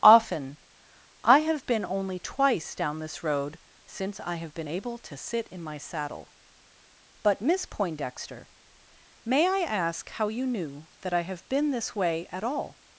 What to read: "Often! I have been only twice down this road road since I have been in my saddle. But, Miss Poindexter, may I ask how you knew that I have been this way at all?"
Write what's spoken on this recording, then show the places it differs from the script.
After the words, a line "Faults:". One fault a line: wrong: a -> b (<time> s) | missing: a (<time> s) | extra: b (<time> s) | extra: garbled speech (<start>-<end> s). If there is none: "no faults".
"Often! I have been only twice down this road since I have been able to sit in my saddle. But, Miss Poindexter, may I ask how you knew that I have been this way at all?"
Faults:
missing: road (3.6 s)
extra: able to sit (4.7 s)